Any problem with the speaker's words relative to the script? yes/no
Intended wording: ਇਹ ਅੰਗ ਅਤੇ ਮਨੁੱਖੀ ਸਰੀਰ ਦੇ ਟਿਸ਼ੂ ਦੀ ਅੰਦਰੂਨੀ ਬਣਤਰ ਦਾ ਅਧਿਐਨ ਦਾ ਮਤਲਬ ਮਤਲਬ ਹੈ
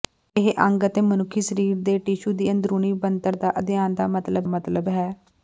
no